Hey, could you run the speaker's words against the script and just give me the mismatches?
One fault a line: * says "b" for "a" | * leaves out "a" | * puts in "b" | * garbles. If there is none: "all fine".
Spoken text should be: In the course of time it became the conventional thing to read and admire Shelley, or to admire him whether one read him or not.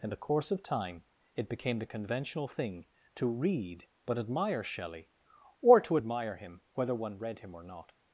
* says "but" for "and"